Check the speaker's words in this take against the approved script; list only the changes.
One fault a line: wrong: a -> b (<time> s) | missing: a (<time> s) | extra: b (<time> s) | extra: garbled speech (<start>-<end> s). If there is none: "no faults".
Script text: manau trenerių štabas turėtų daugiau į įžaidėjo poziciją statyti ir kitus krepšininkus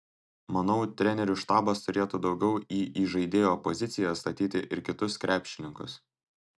no faults